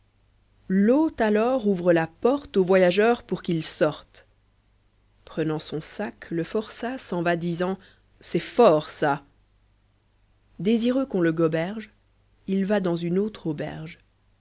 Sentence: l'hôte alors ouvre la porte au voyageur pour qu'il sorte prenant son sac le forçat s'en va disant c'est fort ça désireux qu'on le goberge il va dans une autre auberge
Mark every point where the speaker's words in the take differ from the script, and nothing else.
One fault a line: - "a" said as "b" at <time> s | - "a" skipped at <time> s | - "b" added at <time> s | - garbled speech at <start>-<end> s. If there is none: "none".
none